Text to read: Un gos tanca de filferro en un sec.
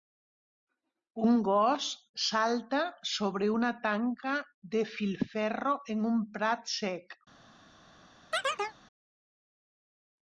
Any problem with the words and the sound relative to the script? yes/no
yes